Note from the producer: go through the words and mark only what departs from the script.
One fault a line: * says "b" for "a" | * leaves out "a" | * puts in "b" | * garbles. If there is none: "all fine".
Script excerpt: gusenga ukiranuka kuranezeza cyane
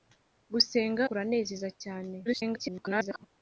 * leaves out "ukiranuka"
* garbles